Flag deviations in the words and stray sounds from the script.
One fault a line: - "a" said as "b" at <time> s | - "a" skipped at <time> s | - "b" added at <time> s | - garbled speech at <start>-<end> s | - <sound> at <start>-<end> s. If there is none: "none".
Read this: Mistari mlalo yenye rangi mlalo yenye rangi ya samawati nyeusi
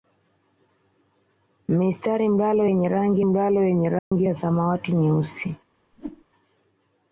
- dropout at 4.0-4.1 s
- whoosh at 5.9-6.2 s